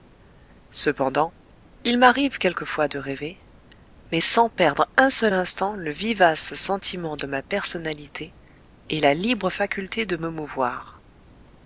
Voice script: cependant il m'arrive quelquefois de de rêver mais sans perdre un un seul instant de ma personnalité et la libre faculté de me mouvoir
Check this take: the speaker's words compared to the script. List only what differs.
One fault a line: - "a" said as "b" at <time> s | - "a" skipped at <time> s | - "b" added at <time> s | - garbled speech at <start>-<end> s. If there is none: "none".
- "de" skipped at 3.0 s
- "un" skipped at 5.1 s
- "le vivace sentiment" added at 5.7 s